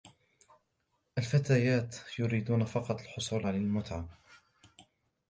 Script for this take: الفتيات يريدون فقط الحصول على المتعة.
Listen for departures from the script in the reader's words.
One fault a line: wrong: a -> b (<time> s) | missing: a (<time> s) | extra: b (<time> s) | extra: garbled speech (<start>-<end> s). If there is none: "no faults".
no faults